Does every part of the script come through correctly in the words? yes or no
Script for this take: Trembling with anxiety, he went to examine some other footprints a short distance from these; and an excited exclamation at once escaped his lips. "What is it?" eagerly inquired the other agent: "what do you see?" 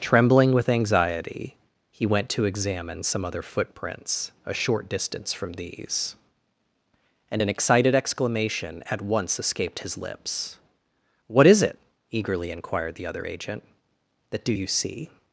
no